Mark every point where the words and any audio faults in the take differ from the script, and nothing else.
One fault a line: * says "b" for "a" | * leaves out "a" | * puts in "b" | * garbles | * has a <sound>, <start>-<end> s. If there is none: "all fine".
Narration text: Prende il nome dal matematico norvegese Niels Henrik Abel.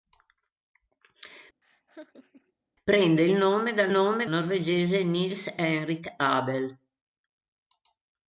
* has a laugh, 1.6-2.5 s
* says "nome" for "matematico"